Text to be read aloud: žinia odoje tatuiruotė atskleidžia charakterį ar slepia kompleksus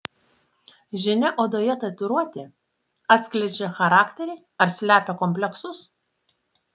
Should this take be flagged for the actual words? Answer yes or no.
no